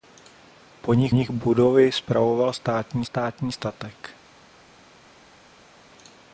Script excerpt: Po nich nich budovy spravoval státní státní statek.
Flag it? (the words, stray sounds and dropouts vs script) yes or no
no